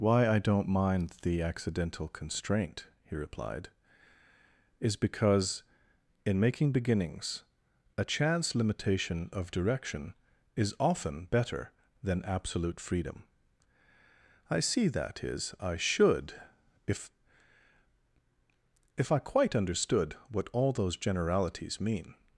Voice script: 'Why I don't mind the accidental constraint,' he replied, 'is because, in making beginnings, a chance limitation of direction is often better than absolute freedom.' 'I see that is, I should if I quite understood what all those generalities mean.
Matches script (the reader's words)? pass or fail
fail